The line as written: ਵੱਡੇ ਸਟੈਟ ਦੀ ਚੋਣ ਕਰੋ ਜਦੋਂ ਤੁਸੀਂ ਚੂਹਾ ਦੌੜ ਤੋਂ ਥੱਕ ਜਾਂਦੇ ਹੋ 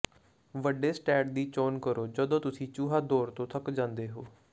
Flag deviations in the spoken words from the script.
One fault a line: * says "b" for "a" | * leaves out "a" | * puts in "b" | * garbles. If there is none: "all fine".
all fine